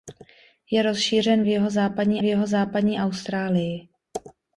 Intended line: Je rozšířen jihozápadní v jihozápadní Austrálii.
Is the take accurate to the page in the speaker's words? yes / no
yes